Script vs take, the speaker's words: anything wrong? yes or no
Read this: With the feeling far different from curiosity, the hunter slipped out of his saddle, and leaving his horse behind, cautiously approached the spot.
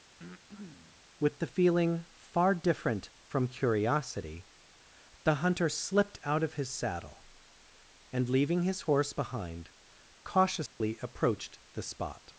no